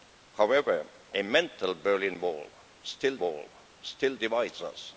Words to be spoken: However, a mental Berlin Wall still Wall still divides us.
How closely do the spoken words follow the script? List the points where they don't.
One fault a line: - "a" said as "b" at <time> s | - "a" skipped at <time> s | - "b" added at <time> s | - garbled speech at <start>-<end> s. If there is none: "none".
none